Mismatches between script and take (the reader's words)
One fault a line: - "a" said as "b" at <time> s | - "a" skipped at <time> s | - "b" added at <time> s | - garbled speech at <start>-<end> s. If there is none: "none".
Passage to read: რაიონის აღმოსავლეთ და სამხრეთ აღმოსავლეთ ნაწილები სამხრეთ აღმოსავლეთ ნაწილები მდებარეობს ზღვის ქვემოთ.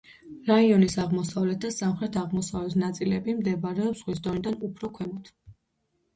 - "სამხრეთ აღმოსავლეთ ნაწილები მდებარეობს ზღვის" said as "მდებარეობს ზღვის დონიდან უფრო" at 3.4 s